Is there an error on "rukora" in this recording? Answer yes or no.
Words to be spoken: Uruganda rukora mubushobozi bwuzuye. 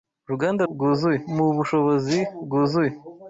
yes